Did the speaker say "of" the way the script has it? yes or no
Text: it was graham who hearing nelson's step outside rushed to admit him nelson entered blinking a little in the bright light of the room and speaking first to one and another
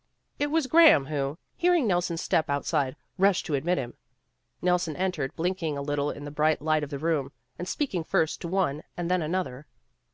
yes